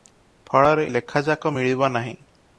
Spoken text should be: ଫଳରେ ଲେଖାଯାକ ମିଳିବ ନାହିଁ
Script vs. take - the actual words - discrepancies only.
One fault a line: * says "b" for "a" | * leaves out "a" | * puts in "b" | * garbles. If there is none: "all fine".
all fine